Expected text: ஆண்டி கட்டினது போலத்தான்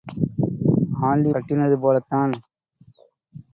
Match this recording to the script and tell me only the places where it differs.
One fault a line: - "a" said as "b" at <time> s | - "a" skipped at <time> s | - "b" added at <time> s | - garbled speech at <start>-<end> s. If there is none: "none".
none